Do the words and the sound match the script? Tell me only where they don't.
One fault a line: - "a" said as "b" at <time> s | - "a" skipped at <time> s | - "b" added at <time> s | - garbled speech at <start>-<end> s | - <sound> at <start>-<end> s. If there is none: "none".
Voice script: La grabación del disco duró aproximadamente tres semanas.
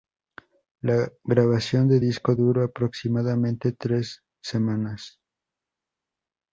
none